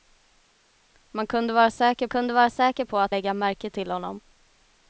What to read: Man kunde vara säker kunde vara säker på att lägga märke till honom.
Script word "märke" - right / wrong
right